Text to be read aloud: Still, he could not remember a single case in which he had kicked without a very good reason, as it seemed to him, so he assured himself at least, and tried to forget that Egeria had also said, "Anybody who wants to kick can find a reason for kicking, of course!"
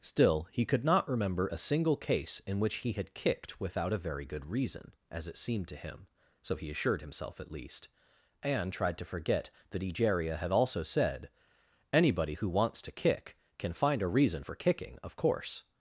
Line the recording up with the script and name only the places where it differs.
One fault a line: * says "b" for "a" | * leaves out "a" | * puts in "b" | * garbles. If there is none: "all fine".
all fine